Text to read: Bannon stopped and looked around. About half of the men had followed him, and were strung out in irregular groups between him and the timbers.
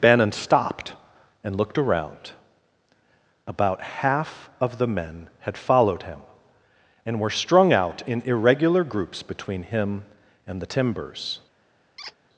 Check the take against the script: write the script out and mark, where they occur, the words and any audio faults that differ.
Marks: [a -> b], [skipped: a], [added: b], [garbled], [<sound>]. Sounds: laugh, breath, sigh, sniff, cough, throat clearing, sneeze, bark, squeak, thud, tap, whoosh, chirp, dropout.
Bannon stopped and looked around. About half of the men had followed him, and were strung out in irregular groups between him and the timbers. [squeak]